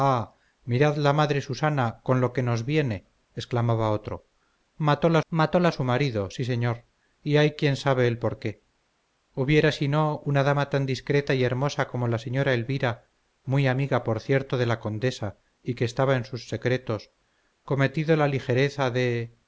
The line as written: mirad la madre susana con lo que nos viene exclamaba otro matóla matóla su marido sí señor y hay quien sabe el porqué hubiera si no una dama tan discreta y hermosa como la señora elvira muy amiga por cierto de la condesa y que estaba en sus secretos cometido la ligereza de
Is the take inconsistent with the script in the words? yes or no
no